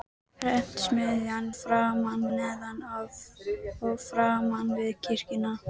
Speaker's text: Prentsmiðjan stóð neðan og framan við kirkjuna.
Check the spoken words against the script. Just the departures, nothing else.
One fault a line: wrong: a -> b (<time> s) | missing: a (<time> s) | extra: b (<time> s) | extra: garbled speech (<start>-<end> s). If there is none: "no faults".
wrong: stóð -> framan (1.6 s)